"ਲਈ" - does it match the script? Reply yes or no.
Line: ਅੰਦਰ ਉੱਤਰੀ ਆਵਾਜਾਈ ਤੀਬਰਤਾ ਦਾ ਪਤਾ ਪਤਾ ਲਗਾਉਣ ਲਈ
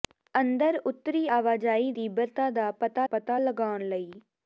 yes